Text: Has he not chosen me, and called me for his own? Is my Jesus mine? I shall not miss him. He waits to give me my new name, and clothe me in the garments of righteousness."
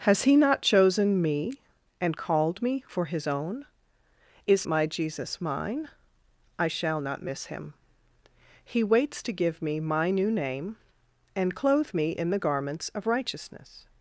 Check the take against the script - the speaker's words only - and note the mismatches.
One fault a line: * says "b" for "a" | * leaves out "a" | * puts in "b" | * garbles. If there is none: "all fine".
all fine